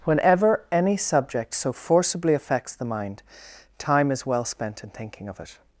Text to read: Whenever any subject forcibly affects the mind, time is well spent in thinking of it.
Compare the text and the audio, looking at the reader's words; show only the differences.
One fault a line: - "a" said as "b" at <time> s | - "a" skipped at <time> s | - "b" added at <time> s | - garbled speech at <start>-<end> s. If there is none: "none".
- "so" added at 1.5 s